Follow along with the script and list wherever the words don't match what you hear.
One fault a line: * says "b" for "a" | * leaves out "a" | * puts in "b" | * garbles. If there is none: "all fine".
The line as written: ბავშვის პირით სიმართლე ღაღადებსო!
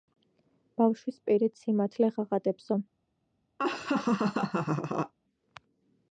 all fine